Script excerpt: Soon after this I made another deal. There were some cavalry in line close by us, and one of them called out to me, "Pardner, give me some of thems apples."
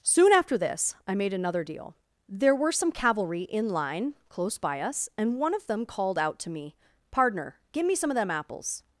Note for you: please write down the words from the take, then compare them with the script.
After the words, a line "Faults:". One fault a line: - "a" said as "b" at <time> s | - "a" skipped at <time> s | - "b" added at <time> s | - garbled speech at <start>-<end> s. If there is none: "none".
Soon after this I made another deal. There were some cavalry in line close by us, and one of them called out to me, "Pardner, give me some of them apples."
Faults:
- "thems" said as "them" at 8.2 s